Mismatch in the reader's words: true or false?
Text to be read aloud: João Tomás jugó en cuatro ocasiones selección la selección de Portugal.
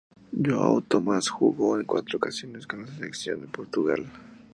true